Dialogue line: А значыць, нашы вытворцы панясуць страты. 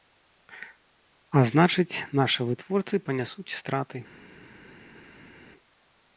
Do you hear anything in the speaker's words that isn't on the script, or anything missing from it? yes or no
no